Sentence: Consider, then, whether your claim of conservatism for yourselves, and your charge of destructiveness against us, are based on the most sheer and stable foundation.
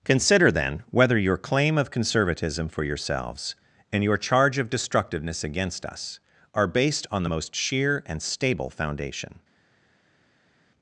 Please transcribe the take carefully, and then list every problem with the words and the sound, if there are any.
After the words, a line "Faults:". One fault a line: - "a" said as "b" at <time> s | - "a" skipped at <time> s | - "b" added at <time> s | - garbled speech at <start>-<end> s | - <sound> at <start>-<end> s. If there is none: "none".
Consider, then, whether your claim of conservatism for yourselves, and your charge of destructiveness against us, are based on the most sheer and stable foundation.
Faults:
none